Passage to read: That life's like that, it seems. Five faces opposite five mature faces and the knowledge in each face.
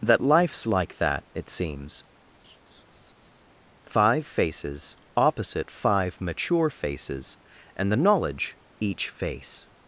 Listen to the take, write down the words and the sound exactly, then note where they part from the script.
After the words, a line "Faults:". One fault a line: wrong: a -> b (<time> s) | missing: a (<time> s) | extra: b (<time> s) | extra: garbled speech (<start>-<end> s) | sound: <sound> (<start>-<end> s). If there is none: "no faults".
That life's like that, it seems. Five faces opposite five mature faces and the knowledge each face.
Faults:
sound: laugh (2.4-3.5 s)
missing: in (8.6 s)